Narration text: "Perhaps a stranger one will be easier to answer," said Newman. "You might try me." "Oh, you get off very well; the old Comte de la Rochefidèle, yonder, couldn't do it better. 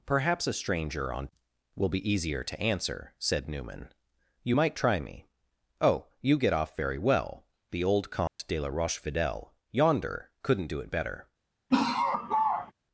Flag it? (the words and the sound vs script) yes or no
yes